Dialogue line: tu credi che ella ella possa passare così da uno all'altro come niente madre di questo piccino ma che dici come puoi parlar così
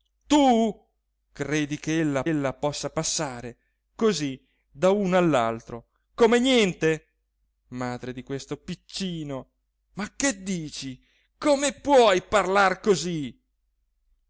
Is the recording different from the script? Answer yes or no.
no